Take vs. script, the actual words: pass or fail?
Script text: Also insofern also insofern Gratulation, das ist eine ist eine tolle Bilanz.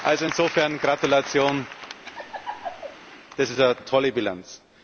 fail